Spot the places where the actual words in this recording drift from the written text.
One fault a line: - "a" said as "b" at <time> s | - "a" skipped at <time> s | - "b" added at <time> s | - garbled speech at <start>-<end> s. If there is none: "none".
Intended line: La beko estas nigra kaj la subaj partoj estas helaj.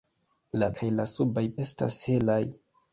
- "beko estas nigra" skipped at 0.7 s
- "partoj" skipped at 1.4 s